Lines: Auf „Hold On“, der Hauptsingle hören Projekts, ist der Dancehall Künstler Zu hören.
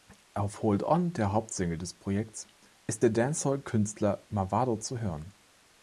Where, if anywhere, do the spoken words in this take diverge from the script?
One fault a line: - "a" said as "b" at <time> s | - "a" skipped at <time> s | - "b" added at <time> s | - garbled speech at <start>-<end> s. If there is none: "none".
- "hören" said as "des" at 1.8 s
- "Mavado" added at 4.3 s